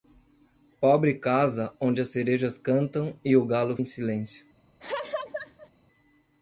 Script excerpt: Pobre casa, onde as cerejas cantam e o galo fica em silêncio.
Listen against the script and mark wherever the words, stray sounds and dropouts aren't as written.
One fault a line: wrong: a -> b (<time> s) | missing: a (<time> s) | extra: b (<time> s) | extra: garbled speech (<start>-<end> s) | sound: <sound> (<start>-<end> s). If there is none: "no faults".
missing: fica (3.8 s)
sound: laugh (4.8-5.7 s)